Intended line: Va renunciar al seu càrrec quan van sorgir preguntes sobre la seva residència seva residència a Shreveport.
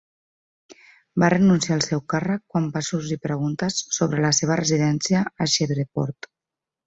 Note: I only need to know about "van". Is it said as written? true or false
true